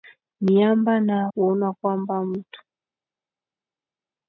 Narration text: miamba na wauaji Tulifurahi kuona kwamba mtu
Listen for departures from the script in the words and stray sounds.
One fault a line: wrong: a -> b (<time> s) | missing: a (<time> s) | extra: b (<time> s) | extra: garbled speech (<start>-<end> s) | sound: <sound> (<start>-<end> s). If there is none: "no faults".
missing: wauaji Tulifurahi (1.3 s)